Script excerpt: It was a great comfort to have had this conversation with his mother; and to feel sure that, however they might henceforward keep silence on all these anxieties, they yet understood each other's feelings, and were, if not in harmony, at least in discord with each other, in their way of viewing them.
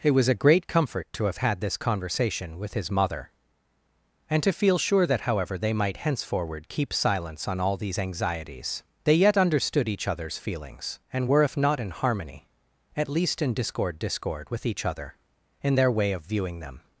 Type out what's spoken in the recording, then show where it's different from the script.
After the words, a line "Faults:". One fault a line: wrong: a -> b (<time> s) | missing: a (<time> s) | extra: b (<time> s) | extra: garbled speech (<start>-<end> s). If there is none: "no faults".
It was a great comfort to have had this conversation with his mother; and to feel sure that, however they might henceforward keep silence on all these anxieties, they yet understood each other's feelings, and were, if not in harmony, at least in discord discord with each other, in their way of viewing them.
Faults:
extra: discord (14.0 s)